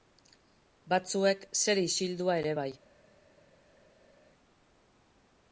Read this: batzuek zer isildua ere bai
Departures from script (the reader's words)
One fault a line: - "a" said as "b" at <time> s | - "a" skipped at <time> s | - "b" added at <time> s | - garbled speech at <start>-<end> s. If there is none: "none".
none